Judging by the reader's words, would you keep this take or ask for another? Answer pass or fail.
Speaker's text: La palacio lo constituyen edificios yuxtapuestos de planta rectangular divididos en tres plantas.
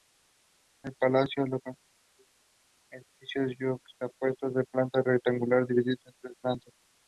fail